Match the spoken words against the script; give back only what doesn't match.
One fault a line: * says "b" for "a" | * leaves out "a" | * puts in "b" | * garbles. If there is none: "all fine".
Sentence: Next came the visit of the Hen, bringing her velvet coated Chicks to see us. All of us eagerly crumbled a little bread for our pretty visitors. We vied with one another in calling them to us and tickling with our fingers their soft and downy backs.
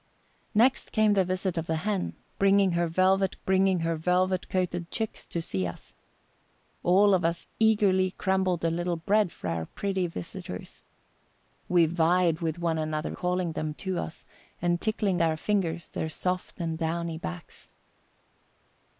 * puts in "bringing her velvet"
* leaves out "in"
* leaves out "with"